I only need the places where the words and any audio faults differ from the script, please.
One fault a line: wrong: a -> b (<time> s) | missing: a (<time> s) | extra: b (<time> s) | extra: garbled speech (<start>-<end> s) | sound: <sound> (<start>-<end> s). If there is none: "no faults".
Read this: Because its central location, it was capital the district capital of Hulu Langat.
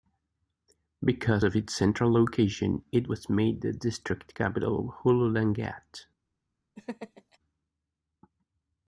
extra: of (1.4 s)
wrong: capital -> made (3.3 s)
sound: laugh (6.8-7.4 s)